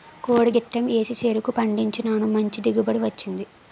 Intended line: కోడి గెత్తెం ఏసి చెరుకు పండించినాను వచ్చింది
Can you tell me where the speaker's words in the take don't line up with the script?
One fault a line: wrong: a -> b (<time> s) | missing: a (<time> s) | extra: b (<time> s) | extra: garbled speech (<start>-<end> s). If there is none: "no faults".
extra: మంచి దిగుబడి (2.3 s)